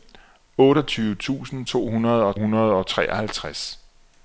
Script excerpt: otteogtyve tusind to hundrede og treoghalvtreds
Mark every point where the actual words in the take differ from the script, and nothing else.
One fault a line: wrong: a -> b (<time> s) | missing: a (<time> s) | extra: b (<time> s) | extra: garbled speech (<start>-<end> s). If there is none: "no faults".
extra: hundrede og (2.4 s)